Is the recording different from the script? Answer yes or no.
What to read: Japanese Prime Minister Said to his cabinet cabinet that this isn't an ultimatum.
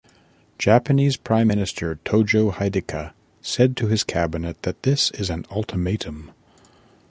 yes